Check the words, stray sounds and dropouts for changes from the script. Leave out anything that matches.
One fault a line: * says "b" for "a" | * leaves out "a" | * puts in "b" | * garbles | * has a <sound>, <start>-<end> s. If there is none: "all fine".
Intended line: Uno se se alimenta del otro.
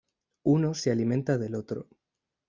* leaves out "se"